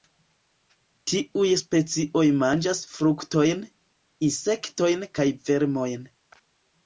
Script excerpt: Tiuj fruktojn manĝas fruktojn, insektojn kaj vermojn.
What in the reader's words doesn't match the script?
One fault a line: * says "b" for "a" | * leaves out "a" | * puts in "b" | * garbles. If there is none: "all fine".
* says "specioj" for "fruktojn"